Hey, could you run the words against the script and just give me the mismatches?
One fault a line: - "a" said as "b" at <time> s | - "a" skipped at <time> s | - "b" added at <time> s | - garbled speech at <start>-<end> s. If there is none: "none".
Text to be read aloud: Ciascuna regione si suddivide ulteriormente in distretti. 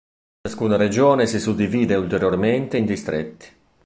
none